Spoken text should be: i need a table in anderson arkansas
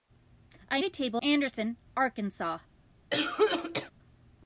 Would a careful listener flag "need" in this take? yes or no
yes